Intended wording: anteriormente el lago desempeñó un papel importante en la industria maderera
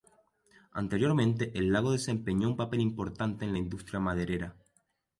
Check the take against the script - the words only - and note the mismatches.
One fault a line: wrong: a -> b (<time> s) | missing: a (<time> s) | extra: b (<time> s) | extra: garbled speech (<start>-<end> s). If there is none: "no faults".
no faults